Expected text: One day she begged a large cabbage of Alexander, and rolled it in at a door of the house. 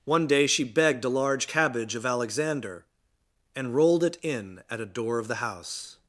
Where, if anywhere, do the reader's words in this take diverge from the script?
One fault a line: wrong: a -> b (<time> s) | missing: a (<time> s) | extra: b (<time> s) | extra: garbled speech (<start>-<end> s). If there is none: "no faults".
no faults